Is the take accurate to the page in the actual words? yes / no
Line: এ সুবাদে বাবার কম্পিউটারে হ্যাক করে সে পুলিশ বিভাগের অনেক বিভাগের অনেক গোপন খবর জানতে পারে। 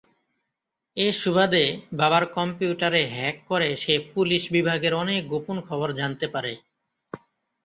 no